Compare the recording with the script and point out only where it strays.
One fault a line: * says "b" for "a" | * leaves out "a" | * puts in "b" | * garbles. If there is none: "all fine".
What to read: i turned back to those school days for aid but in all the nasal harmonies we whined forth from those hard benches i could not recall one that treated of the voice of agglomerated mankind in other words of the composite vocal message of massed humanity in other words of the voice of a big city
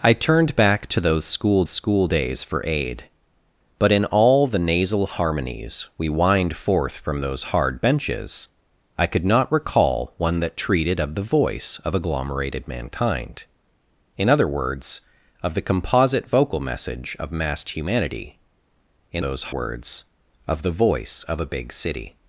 * puts in "school"
* says "those" for "other"